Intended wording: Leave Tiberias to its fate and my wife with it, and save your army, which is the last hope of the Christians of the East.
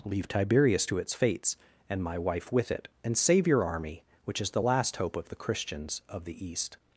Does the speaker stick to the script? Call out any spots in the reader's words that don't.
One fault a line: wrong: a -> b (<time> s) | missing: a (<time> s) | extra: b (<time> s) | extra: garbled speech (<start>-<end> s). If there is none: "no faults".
wrong: fate -> fates (1.1 s)